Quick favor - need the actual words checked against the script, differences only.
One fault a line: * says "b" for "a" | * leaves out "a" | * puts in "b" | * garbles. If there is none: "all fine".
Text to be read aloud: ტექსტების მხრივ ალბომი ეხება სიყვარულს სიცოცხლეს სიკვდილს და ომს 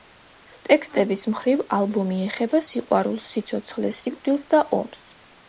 all fine